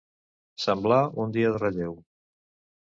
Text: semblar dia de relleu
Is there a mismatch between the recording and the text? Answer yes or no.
yes